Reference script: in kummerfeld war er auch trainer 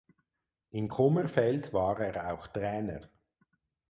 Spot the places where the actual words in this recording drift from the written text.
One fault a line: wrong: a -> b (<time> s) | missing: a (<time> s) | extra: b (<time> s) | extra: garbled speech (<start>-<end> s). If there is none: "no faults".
no faults